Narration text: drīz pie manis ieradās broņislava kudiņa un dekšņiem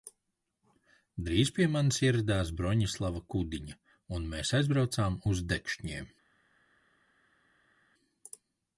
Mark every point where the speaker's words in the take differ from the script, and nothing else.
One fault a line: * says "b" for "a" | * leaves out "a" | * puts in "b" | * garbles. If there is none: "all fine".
* puts in "mēs aizbraucām uz"